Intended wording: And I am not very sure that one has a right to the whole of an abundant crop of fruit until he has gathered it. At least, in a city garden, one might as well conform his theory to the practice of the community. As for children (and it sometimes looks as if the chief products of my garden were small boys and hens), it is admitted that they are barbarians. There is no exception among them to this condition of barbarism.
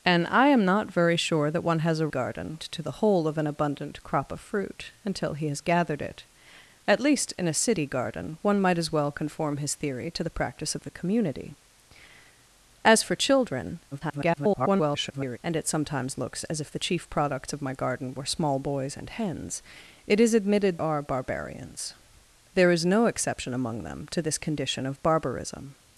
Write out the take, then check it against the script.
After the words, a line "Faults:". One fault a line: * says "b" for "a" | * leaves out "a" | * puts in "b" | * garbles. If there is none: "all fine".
And I am not very sure that one has a garden to the whole of an abundant crop of fruit until he has gathered it. At least, in a city garden, one might as well conform his theory to the practice of the community. As for children [garbled] (and it sometimes looks as if the chief products of my garden were small boys and hens), it is admitted are barbarians. There is no exception among them to this condition of barbarism.
Faults:
* says "garden" for "right"
* garbles
* leaves out "that they"